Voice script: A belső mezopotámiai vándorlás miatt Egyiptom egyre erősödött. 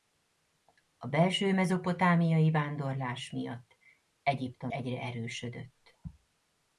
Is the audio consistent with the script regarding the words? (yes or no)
yes